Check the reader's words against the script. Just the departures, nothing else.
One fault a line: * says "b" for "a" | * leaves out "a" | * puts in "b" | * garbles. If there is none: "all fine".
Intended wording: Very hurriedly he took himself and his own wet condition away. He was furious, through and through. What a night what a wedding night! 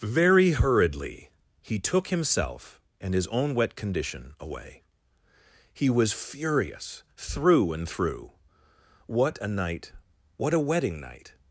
all fine